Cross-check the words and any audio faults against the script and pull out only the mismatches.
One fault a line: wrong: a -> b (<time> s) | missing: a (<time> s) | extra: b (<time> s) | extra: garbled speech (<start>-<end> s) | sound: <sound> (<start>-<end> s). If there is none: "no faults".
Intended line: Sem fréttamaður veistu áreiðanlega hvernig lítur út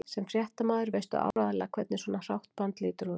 sound: dropout (1.3-1.4 s)
extra: svona hrátt band (2.0 s)